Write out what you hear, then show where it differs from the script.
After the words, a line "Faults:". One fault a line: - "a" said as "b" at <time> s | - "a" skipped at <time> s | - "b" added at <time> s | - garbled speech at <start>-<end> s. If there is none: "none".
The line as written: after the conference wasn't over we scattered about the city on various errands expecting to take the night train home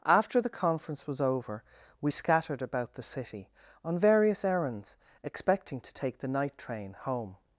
after the conference was over we scattered about the city on various errands expecting to take the night train home
Faults:
- "wasn't" said as "was" at 1.1 s